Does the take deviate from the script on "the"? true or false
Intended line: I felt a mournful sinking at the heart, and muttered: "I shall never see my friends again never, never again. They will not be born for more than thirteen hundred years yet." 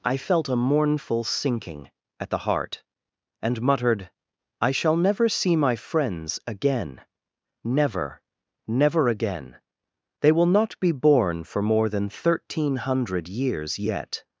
false